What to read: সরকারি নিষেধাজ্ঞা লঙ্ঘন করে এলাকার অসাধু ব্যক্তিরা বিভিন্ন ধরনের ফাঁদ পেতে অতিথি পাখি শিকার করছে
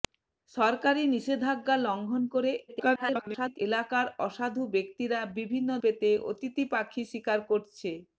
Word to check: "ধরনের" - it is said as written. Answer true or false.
false